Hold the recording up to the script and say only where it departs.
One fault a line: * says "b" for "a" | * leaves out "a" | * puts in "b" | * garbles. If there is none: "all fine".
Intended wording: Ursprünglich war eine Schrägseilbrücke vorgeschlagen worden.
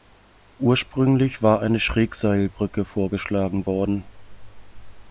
all fine